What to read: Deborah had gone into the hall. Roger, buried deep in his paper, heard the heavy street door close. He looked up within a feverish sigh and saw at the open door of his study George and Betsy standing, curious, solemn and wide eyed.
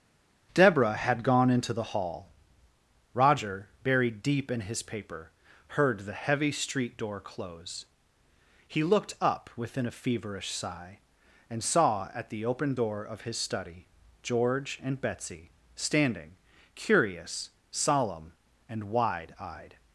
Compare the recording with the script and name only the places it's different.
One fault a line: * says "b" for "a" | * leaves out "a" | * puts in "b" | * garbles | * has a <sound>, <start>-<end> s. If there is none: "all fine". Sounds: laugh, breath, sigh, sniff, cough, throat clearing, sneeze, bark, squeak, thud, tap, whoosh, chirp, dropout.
all fine